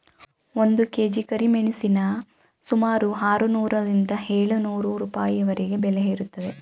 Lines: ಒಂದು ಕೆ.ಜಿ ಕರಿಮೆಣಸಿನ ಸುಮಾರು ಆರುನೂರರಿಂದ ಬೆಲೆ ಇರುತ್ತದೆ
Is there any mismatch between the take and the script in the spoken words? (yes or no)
yes